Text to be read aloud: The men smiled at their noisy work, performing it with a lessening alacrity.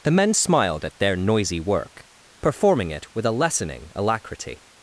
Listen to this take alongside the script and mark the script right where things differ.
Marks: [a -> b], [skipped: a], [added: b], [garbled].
The men smiled at their noisy work, performing it with a lessening alacrity.